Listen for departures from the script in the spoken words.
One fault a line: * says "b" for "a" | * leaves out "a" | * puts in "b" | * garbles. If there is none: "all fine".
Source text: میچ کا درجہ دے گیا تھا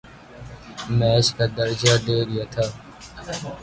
all fine